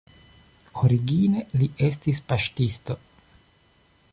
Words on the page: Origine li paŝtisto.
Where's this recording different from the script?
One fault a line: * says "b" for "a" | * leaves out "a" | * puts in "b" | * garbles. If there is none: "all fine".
* puts in "estis"